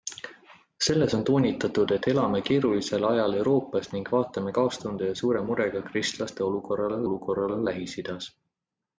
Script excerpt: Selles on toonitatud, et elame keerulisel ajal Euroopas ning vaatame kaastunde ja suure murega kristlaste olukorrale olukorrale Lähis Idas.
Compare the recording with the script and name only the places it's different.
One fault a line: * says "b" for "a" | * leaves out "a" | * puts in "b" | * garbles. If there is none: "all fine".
all fine